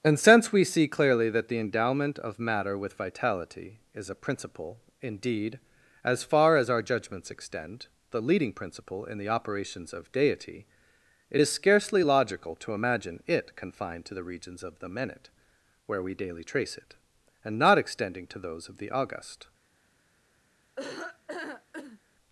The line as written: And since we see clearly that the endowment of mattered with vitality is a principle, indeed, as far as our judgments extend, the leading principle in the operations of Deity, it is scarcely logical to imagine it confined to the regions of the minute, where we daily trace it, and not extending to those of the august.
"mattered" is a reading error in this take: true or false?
true